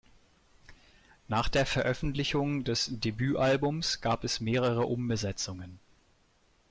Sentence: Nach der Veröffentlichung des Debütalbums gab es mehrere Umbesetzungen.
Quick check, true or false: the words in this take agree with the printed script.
true